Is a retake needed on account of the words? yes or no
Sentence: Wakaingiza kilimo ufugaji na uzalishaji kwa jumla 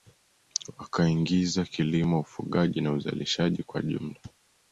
no